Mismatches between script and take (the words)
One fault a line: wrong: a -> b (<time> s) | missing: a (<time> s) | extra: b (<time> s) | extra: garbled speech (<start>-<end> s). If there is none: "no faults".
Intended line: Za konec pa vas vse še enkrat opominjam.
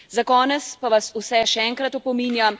no faults